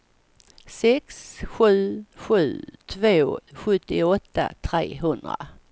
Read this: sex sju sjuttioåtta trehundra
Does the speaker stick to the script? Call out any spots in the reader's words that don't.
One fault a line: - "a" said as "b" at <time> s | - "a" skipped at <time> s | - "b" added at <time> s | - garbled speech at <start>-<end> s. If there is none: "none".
- "sju två" added at 2.1 s